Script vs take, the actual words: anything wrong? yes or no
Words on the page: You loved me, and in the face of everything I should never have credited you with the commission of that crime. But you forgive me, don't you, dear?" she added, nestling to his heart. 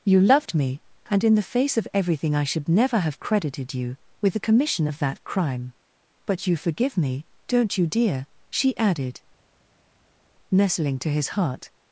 no